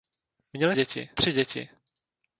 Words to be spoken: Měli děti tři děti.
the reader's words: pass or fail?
pass